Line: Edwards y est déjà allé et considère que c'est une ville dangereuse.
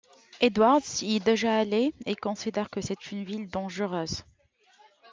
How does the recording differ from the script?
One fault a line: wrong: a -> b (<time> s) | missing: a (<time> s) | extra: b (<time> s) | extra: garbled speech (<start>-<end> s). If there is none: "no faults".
no faults